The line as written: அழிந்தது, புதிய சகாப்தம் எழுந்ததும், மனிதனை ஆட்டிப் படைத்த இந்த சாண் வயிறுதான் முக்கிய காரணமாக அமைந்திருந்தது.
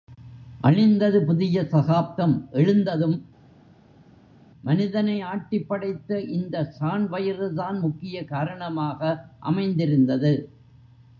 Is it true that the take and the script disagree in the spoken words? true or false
false